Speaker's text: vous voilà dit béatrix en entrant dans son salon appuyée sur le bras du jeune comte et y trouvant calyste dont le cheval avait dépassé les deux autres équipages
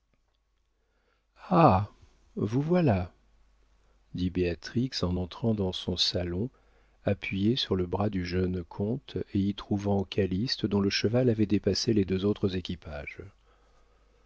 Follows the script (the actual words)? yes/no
yes